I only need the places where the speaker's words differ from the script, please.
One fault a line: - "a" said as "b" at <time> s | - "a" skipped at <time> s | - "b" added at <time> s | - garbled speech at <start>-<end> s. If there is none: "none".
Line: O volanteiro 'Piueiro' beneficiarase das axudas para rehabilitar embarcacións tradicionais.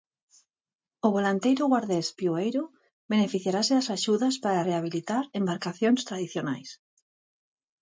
- "guardés" added at 1.7 s